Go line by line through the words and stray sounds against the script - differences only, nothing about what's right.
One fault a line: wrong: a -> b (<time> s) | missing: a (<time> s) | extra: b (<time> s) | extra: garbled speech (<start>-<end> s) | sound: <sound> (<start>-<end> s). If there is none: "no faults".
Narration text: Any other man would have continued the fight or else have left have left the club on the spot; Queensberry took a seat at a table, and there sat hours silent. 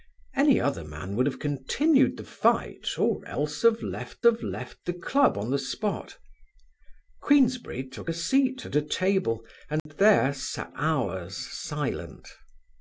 sound: dropout (9.8-9.9 s)